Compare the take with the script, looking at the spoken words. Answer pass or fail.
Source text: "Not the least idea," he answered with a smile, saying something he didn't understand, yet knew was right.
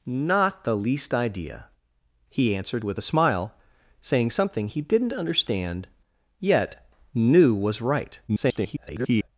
fail